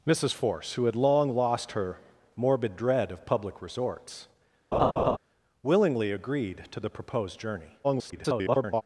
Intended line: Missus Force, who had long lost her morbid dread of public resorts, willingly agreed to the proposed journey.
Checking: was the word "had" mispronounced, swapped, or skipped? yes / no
no